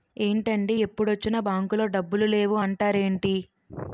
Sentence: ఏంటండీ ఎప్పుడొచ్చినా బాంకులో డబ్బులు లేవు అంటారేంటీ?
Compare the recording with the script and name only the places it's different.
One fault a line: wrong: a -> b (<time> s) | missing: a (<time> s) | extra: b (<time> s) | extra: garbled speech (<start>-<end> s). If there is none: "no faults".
no faults